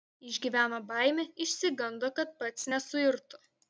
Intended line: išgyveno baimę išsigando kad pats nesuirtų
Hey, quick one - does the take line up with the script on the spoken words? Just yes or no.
yes